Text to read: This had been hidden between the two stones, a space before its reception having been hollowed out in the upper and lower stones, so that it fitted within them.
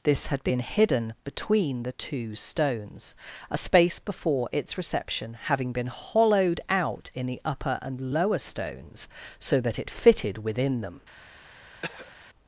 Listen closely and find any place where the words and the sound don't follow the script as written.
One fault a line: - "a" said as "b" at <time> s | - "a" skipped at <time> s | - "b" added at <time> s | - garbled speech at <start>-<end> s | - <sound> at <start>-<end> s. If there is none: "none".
- throat clearing at 11.8-12.2 s